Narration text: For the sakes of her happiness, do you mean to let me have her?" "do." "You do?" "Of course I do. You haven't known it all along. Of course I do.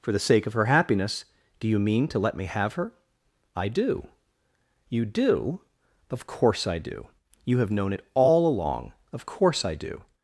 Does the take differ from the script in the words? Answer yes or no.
yes